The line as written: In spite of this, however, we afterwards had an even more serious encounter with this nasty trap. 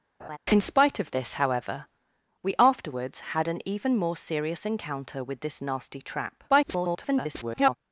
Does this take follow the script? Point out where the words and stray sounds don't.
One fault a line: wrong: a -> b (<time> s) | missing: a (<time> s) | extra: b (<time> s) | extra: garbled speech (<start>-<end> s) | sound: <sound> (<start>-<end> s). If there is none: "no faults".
sound: laugh (0.2-0.4 s)
extra: garbled speech (6.5-7.8 s)